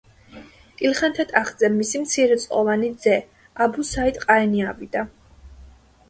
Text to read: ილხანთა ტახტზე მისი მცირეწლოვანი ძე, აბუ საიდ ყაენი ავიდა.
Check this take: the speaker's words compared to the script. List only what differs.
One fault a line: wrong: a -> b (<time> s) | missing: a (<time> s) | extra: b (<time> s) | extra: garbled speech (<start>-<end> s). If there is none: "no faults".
no faults